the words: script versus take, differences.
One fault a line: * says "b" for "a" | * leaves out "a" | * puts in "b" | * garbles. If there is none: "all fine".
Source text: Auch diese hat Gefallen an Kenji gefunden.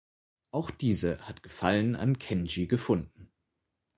all fine